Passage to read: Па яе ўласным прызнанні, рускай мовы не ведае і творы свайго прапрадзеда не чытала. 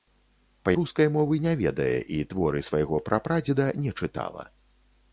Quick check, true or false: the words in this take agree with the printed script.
false